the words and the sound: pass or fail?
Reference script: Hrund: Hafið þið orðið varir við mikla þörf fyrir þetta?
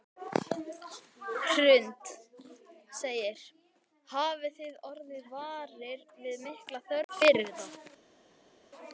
pass